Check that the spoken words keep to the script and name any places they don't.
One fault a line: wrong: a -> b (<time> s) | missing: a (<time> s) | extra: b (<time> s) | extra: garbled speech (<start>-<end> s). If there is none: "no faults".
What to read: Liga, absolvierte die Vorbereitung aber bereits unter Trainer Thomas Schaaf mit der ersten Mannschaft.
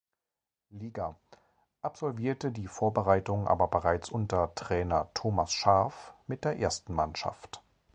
no faults